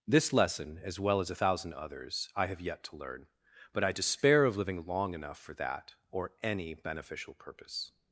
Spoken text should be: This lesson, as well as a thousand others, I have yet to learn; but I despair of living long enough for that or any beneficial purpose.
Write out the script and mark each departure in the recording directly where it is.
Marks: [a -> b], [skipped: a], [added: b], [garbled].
This lesson, as well as a thousand others, I have yet to learn; but I despair of living long enough for that or any beneficial purpose.